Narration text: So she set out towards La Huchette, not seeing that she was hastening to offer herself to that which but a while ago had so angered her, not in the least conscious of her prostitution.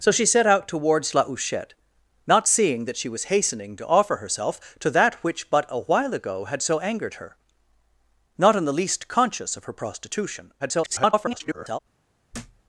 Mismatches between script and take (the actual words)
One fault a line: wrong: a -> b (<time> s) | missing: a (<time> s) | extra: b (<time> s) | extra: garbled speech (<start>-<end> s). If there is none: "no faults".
extra: garbled speech (10.6-11.8 s)